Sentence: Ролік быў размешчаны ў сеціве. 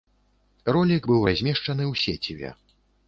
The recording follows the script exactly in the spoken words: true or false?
true